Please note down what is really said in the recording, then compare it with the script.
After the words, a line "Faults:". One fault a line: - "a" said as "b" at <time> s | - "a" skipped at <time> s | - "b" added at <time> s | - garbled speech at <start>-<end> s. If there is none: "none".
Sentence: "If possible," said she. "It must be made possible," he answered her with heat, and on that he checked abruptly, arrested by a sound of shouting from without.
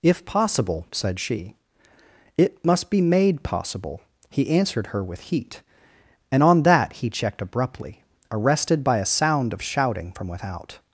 "If possible," said she. "It must be made possible," he answered her with heat, and on that he checked abruptly, arrested by a sound of shouting from without.
Faults:
none